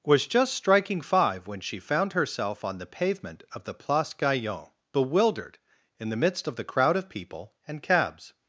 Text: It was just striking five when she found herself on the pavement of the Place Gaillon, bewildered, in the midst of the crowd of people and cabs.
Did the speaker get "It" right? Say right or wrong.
wrong